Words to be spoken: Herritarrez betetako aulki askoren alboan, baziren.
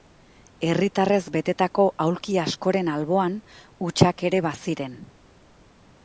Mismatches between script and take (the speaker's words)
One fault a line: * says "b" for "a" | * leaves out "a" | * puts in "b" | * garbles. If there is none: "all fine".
* puts in "hutsak ere"